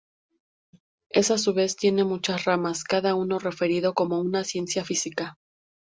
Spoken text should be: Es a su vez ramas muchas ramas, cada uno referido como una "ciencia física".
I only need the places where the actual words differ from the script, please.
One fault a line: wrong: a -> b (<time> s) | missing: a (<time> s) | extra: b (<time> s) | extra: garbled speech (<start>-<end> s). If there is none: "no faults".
wrong: ramas -> tiene (1.8 s)